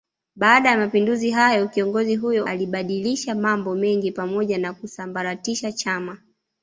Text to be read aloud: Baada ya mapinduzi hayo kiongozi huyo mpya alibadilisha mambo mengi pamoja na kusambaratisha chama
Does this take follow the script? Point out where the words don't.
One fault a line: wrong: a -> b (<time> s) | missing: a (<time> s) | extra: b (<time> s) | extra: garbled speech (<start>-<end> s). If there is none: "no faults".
missing: mpya (2.5 s)